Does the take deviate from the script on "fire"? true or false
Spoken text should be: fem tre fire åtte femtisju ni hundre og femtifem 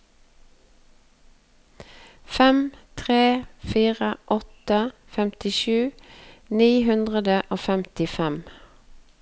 false